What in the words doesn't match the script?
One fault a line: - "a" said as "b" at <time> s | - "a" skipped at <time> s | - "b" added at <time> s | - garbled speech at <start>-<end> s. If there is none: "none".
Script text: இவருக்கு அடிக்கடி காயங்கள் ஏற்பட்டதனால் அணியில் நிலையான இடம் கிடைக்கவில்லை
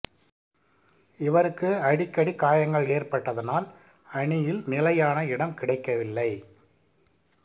none